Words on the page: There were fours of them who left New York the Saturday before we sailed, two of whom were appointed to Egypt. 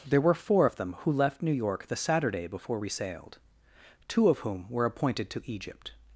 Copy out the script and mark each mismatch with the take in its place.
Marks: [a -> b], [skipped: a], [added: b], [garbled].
There were [fours -> four] of them who left New York the Saturday before we sailed, two of whom were appointed to Egypt.